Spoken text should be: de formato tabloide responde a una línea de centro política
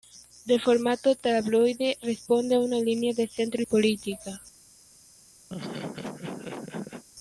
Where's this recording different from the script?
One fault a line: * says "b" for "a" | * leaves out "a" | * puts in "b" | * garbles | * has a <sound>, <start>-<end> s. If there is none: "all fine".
* has a laugh, 5.5-7.0 s